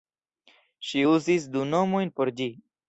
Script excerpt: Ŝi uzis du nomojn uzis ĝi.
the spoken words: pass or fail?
fail